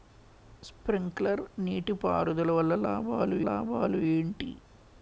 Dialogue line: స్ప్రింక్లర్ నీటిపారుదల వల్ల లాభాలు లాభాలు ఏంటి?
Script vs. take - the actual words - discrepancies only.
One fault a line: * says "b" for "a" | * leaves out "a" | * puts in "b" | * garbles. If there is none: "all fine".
all fine